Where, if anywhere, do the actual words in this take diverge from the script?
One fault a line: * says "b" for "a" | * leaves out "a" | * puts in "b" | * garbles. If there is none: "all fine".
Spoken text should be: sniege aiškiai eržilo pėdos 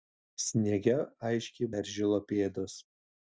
all fine